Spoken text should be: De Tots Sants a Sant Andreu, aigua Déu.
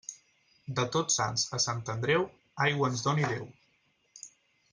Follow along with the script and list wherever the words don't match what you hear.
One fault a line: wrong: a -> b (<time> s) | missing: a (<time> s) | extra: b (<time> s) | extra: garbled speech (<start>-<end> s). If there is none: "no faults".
extra: ens doni (2.9 s)